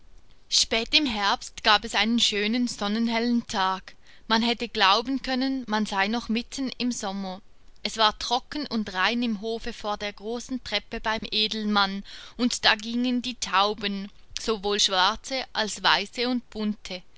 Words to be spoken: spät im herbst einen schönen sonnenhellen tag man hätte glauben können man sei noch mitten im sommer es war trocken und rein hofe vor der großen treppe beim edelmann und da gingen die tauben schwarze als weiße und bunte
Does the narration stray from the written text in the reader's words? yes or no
yes